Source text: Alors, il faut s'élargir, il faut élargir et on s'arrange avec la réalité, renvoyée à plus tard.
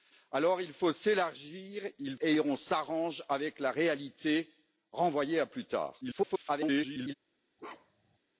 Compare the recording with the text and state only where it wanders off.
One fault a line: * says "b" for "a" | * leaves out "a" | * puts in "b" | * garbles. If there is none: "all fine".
* leaves out "faut élargir"
* garbles